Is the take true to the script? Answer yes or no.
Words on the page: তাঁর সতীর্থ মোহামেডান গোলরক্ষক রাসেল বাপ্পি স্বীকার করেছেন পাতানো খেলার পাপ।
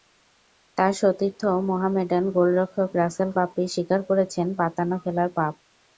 yes